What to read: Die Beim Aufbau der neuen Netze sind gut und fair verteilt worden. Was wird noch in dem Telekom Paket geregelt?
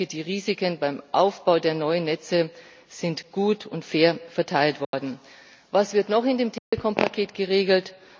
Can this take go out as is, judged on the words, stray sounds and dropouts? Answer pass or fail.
fail